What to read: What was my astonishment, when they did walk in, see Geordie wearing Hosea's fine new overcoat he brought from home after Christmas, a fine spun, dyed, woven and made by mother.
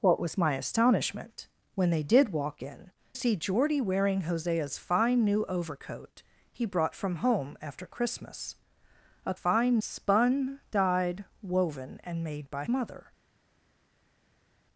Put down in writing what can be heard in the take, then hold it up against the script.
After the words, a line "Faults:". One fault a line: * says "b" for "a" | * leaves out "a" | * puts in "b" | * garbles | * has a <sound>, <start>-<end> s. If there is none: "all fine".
What was my astonishment, when they did walk in, see Geordie wearing Hosea's fine new overcoat he brought from home after Christmas, a fine spun, dyed, woven and made by mother.
Faults:
all fine